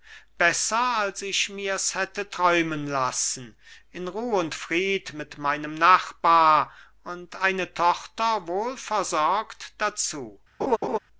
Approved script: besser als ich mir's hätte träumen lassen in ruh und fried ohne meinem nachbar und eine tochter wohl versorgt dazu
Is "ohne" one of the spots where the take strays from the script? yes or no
yes